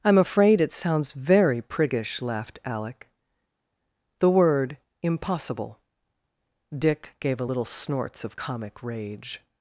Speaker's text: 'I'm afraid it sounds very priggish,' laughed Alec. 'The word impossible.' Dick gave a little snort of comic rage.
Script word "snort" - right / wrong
wrong